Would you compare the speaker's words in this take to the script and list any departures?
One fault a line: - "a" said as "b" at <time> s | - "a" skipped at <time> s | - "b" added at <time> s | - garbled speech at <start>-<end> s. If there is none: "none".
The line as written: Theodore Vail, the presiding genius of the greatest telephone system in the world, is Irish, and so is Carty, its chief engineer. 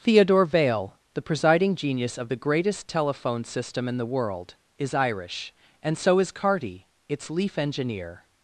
- "chief" said as "leaf" at 7.3 s